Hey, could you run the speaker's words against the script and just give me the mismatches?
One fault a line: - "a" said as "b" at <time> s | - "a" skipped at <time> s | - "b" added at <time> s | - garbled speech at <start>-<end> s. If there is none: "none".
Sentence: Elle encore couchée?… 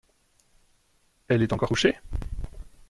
- "est" added at 1.4 s